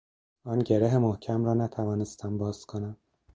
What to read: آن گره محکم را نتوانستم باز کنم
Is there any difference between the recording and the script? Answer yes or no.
no